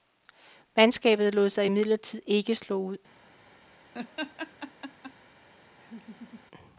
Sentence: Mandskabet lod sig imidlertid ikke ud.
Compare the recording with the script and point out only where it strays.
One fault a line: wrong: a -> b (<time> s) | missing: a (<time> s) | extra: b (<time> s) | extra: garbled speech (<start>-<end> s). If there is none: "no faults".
extra: slå (2.6 s)